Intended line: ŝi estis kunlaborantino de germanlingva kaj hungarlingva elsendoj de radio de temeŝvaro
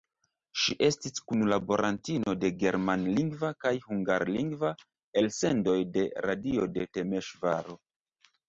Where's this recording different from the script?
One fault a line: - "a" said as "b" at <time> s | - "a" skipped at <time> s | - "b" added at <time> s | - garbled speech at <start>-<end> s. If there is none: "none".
none